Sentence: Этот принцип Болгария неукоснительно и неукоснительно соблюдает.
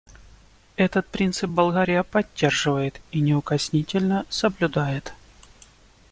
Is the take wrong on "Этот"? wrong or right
right